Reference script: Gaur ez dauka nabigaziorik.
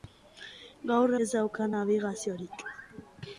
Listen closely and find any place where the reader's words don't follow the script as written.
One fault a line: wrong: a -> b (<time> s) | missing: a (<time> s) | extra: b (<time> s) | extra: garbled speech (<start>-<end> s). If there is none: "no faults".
no faults